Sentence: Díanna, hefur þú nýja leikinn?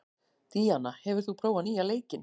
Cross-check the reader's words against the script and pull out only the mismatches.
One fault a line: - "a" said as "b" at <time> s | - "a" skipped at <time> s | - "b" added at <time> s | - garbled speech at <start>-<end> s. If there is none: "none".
- "prófað" added at 1.4 s